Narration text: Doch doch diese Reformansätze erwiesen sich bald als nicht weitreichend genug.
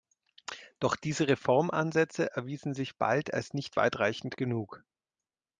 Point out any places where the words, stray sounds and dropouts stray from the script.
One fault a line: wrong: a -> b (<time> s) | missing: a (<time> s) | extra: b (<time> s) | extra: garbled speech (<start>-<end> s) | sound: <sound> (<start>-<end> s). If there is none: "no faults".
missing: doch (0.9 s)